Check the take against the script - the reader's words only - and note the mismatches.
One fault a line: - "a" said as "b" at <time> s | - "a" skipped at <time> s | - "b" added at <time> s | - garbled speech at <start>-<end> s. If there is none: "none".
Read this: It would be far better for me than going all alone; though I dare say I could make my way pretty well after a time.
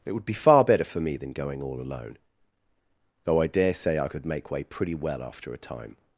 - "my" skipped at 4.5 s